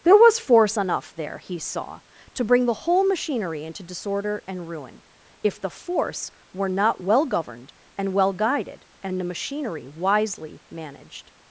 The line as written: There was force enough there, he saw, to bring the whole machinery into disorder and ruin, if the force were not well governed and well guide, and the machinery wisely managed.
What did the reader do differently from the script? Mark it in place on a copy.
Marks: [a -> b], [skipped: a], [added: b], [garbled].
There was force enough there, he saw, to bring the whole machinery into disorder and ruin, if the force were not well governed and well [guide, -> guided] and the machinery wisely managed.